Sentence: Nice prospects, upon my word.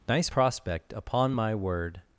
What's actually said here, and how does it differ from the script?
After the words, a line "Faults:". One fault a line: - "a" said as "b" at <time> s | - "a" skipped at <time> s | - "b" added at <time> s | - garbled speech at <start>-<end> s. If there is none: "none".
Nice prospect, upon my word.
Faults:
- "prospects" said as "prospect" at 0.2 s